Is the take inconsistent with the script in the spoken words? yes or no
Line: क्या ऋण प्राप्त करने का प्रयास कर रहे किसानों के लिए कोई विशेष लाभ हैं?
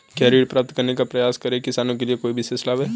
no